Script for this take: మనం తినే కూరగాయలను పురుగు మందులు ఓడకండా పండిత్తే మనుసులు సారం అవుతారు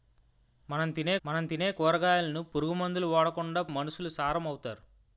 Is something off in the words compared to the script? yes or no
yes